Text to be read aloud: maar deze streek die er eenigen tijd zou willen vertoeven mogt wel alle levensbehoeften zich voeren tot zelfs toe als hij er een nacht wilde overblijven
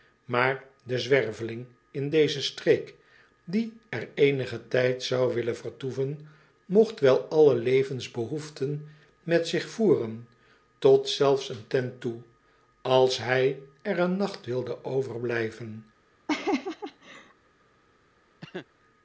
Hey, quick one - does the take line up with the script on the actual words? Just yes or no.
no